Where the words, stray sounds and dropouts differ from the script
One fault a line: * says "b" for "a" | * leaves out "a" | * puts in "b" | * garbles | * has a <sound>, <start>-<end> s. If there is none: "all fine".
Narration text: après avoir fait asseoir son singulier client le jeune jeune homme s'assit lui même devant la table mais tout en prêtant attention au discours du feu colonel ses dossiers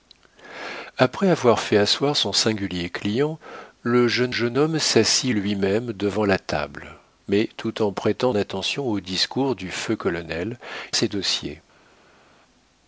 all fine